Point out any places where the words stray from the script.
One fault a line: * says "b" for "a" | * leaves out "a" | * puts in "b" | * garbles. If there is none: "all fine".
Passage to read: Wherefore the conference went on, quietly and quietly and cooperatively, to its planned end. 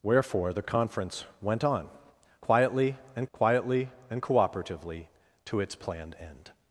all fine